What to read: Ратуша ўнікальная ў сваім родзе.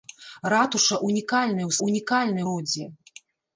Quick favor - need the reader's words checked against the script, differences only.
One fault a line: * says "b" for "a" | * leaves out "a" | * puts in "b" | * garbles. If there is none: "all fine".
* says "ўнікальная" for "сваім"